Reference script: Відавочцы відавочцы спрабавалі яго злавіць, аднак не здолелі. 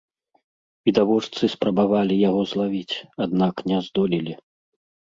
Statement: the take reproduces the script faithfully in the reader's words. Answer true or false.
false